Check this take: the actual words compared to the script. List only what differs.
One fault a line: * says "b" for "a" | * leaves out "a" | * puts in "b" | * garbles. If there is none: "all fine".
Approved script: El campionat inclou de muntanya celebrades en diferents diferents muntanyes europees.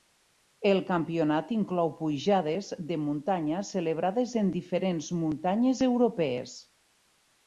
* puts in "pujades"
* leaves out "diferents"